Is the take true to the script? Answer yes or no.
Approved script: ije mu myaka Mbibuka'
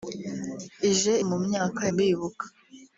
yes